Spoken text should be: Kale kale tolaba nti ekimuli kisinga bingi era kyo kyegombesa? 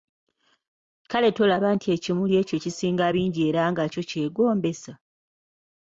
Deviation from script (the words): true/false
true